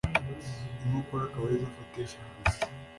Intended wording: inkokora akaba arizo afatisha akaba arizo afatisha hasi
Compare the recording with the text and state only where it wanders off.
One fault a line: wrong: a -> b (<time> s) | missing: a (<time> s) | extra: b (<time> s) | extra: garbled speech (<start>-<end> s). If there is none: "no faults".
missing: akaba arizo afatisha (2.2 s)